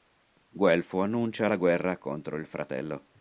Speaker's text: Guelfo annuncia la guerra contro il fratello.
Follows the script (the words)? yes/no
yes